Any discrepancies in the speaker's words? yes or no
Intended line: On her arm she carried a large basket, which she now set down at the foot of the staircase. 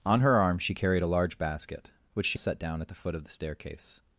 yes